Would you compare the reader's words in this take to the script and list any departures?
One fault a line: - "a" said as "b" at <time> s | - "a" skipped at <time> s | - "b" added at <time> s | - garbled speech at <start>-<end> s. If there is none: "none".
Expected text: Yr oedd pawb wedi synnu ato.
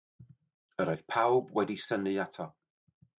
none